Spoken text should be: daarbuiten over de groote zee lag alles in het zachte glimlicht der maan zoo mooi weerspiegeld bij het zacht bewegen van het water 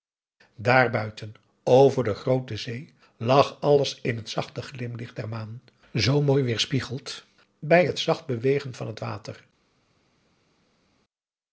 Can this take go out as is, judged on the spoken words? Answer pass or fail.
pass